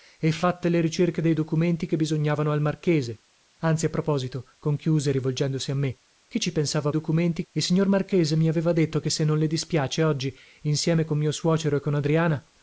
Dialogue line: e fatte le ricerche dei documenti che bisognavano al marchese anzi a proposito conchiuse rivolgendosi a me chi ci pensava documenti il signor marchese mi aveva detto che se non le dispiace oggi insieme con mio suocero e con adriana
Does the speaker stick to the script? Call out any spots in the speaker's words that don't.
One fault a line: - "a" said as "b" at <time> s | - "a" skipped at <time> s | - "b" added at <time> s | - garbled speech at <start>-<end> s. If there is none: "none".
none